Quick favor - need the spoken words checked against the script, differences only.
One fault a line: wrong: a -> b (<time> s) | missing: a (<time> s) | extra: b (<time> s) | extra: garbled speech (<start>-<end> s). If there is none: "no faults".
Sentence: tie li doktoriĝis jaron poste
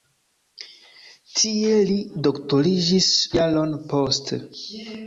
no faults